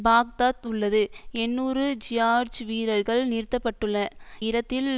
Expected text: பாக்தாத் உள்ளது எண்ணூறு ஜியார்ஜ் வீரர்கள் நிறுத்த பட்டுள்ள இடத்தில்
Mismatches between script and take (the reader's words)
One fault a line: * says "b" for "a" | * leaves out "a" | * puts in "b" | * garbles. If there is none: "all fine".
all fine